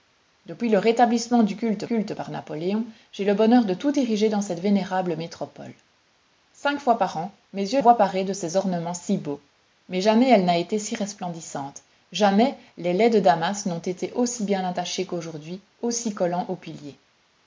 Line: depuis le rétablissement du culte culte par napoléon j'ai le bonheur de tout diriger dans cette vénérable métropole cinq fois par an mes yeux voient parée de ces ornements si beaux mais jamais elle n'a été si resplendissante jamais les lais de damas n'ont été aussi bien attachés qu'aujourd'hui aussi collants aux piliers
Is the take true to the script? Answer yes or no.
yes